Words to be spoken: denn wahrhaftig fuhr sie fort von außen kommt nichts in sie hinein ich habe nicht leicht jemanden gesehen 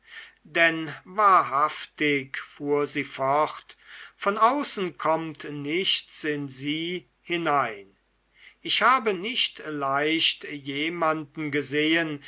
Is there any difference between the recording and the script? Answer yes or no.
no